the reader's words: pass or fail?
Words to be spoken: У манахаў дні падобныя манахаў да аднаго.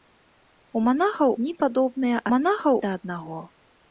pass